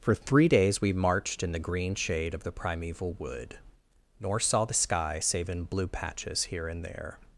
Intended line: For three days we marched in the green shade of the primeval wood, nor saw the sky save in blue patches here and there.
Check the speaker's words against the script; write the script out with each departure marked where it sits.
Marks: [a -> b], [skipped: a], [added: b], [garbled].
For three days we marched in the green shade of the primeval wood, nor saw the sky save in blue patches here and there.